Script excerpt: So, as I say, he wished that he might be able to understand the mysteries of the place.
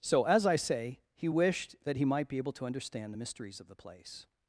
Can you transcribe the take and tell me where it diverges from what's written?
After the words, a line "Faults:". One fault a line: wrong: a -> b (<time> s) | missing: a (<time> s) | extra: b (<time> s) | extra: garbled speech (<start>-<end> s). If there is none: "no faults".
So, as I say, he wished that he might be able to understand the mysteries of the place.
Faults:
no faults